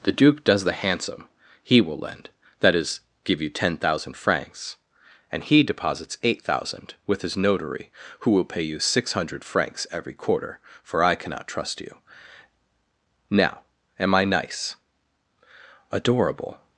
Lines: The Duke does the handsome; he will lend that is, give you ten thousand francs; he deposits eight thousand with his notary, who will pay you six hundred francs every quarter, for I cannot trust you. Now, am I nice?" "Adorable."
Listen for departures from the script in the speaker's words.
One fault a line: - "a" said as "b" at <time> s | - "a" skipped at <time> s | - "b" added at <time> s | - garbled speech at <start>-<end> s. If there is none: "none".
- "and" added at 5.3 s